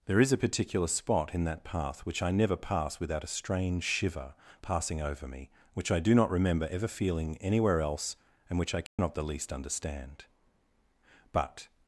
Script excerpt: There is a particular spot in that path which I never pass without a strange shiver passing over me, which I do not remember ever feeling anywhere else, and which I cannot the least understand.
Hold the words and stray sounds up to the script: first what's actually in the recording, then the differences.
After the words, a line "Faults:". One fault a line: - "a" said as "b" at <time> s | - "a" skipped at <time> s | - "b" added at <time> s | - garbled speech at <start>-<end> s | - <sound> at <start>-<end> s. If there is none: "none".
There is a particular spot in that path which I never pass without a strange shiver passing over me, which I do not remember ever feeling anywhere else, and which I cannot the least understand. But
Faults:
- dropout at 8.9-9.0 s
- "But" added at 11.3 s